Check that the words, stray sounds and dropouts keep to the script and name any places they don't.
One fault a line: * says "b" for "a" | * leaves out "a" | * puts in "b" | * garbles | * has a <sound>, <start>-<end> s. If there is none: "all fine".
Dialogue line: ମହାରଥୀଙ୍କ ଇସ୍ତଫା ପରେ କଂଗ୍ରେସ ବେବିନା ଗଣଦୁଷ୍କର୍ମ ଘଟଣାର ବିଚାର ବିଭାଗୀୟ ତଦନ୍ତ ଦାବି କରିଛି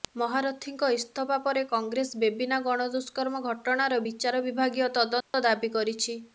* has a dropout, 5.2-5.3 s